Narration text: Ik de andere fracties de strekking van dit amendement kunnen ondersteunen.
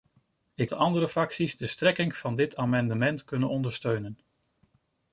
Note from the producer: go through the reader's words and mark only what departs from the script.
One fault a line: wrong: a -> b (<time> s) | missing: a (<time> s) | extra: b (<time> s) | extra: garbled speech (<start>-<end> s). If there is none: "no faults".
no faults